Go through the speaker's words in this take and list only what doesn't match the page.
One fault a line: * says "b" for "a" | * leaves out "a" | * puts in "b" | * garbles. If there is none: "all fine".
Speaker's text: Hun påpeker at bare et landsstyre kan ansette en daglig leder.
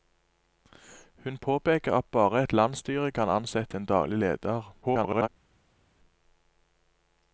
* garbles